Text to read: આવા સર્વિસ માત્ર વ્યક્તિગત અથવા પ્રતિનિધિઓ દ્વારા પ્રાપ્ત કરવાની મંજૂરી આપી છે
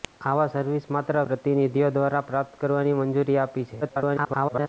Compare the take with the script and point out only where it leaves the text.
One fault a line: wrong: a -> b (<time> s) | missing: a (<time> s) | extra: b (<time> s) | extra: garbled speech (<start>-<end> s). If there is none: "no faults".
missing: વ્યક્તિગત અથવા (1.2 s)
extra: garbled speech (3.8-4.7 s)